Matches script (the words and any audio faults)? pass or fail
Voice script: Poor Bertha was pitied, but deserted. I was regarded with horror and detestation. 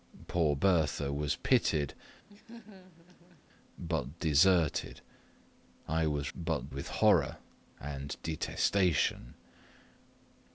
fail